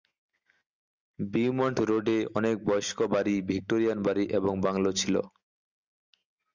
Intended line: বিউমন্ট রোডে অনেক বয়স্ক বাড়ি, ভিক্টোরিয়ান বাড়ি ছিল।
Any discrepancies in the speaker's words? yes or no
yes